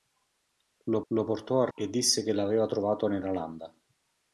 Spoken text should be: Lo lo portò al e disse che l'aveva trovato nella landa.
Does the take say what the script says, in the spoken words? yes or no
yes